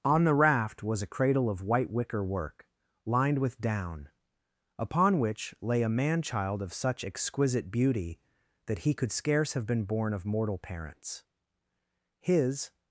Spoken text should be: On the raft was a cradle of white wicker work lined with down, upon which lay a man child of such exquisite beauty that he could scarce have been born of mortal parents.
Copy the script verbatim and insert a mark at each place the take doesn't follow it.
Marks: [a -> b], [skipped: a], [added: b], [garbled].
On the raft was a cradle of white wicker work lined with down, upon which lay a man child of such exquisite beauty that he could scarce have been born of mortal parents. [added: His]